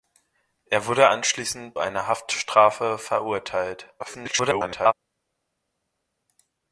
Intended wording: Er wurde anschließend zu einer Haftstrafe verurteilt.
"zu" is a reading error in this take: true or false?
true